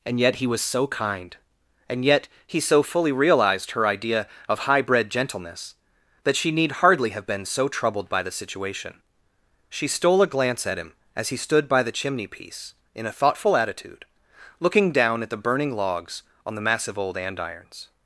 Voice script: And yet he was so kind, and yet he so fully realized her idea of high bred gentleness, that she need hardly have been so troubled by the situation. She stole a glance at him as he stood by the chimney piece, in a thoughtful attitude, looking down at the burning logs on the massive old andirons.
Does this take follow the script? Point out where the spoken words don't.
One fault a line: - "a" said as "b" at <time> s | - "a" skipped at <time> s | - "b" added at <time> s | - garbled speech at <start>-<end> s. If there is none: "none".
none